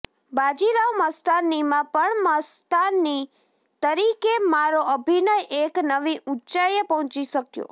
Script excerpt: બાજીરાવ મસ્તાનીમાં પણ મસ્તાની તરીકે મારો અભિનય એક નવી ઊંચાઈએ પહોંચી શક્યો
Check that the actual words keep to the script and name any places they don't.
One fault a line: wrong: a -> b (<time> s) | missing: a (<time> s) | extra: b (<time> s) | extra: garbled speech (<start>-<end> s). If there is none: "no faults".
no faults